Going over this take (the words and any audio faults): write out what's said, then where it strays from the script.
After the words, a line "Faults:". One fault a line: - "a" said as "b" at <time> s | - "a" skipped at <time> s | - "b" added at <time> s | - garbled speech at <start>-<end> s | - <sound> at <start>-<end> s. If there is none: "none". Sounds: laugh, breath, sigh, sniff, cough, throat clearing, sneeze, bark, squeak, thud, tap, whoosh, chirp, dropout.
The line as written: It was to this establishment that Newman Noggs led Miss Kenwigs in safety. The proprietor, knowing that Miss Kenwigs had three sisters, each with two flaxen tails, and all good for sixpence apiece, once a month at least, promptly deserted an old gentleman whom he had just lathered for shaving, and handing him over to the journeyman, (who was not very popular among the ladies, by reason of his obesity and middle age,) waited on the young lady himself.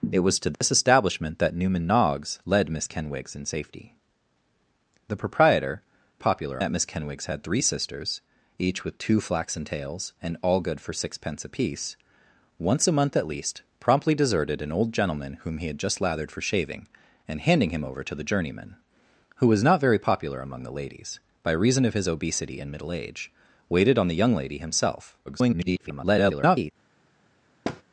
It was to this establishment that Newman Noggs led Miss Kenwigs in safety. The proprietor, popular that Miss Kenwigs had three sisters, each with two flaxen tails, and all good for sixpence apiece, once a month at least, promptly deserted an old gentleman whom he had just lathered for shaving, and handing him over to the journeyman, (who was not very popular among the ladies, by reason of his obesity and middle age,) waited on the young lady himself. [garbled]
Faults:
- dropout at 0.5-0.6 s
- "knowing" said as "popular" at 6.2 s
- garbled speech at 25.3-26.7 s
- thud at 27.6-27.8 s